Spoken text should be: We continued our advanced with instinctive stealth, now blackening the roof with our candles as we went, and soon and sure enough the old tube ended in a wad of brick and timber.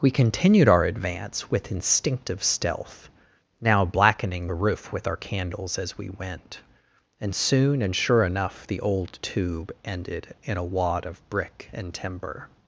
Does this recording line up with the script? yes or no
no